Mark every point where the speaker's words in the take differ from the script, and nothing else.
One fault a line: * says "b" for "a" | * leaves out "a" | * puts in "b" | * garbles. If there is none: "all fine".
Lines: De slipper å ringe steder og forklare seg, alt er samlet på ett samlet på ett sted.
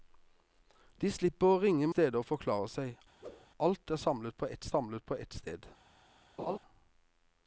all fine